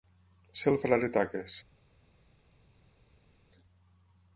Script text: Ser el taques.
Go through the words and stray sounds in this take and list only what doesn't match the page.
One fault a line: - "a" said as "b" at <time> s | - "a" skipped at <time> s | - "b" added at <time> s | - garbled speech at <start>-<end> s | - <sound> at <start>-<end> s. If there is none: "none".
- "frare" added at 0.8 s